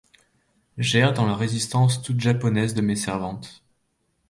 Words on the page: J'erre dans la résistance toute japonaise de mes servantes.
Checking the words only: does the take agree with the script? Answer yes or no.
yes